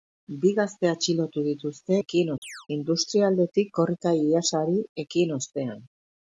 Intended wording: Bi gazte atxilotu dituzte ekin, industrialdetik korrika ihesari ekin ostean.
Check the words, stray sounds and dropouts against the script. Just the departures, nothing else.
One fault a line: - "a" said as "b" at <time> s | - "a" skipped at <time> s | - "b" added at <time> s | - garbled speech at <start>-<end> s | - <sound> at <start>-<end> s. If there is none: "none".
- chirp at 2.4-2.7 s